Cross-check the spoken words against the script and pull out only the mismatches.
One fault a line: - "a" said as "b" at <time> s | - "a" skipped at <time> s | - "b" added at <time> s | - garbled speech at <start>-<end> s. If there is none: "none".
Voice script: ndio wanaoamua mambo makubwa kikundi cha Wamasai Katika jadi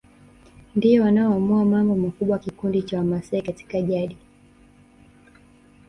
none